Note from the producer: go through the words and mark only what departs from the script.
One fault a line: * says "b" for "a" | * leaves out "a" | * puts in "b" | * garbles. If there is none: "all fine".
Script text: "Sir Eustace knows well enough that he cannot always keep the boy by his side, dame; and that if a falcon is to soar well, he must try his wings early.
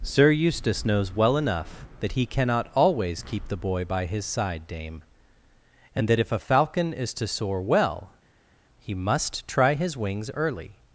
all fine